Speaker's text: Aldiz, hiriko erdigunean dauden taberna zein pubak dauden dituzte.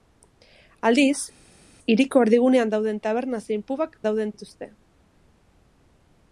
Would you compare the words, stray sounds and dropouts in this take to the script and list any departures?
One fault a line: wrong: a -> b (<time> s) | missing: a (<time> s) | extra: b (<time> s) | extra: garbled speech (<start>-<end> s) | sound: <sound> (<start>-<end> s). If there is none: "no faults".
no faults